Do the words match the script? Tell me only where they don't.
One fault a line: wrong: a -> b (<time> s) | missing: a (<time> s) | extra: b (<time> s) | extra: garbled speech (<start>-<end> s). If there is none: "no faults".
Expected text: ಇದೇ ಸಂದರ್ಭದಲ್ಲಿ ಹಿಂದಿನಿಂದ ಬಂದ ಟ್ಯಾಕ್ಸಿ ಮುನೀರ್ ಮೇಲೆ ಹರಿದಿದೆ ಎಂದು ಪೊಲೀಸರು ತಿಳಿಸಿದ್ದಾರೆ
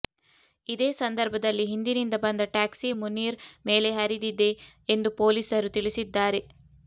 no faults